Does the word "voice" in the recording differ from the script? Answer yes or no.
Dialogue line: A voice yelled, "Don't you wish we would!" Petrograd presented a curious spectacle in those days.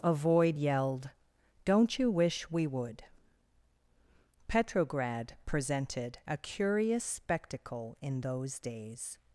yes